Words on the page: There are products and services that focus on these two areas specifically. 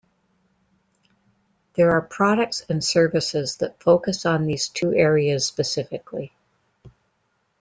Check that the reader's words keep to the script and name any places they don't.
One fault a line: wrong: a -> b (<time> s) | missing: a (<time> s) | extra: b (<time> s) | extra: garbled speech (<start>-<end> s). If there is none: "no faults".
no faults